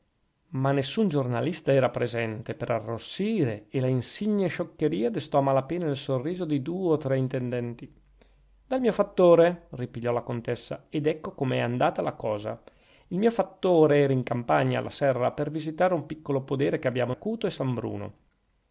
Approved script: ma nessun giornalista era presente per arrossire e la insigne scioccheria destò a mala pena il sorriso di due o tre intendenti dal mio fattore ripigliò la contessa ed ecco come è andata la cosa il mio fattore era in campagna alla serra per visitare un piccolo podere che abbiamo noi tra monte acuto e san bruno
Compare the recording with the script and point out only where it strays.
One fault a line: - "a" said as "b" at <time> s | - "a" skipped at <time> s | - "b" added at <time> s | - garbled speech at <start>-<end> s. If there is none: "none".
- "noi tra monte" skipped at 17.1 s